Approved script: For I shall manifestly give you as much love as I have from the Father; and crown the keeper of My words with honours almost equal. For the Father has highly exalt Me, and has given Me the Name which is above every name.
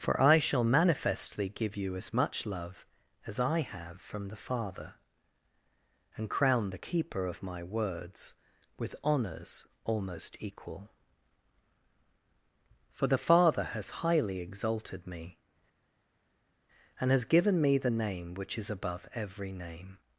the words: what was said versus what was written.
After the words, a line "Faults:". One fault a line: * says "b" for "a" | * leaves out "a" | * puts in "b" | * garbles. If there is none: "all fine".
For I shall manifestly give you as much love as I have from the Father; and crown the keeper of My words with honours almost equal. For the Father has highly exalted Me, and has given Me the Name which is above every name.
Faults:
* says "exalted" for "exalt"